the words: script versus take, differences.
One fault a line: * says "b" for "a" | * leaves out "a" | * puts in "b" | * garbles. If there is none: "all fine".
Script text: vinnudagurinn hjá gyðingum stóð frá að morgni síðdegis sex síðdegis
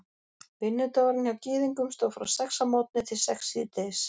* puts in "sex"
* says "til" for "síðdegis"